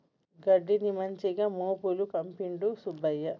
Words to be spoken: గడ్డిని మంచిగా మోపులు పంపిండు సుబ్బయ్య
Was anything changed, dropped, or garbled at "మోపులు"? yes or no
no